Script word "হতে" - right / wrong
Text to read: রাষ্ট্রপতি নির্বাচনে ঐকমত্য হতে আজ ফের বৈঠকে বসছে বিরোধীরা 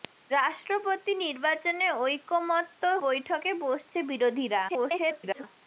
wrong